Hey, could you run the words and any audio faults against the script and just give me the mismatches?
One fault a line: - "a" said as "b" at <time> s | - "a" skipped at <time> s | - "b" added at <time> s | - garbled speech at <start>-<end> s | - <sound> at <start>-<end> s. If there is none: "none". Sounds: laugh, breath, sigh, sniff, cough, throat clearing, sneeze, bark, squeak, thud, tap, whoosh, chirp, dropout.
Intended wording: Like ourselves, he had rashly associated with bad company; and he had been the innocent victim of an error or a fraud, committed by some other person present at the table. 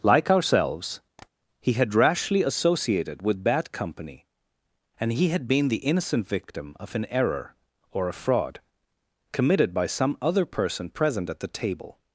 - tap at 1.2-1.3 s